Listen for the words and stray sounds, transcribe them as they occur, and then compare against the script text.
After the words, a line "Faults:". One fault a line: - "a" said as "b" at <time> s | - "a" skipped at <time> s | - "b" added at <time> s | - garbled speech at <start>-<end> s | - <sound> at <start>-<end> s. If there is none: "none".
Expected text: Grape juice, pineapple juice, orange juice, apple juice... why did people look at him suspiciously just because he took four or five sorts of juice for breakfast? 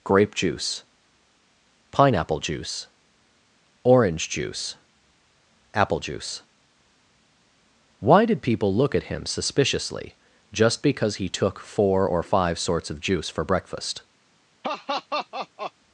Grape juice, pineapple juice, orange juice, apple juice... why did people look at him suspiciously just because he took four or five sorts of juice for breakfast?
Faults:
- laugh at 14.6-15.7 s